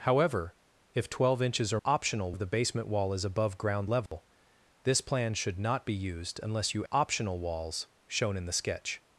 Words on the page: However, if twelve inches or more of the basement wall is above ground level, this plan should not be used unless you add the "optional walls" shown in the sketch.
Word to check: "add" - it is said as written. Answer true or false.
false